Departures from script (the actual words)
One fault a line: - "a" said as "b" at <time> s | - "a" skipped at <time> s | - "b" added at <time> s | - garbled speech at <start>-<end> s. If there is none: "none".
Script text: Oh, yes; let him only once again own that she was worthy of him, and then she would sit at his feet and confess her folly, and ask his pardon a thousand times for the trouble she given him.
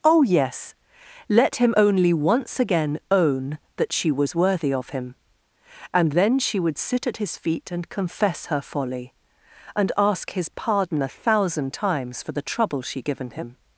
none